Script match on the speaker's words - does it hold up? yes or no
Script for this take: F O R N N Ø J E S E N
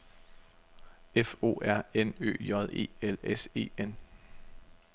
no